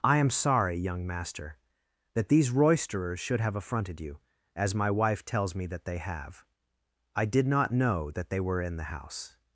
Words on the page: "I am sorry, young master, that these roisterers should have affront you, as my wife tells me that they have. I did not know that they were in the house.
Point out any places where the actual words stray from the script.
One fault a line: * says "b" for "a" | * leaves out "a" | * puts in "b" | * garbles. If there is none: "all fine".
* says "affronted" for "affront"